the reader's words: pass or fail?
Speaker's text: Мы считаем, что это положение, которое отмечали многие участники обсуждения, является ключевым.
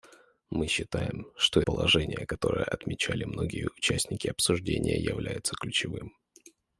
fail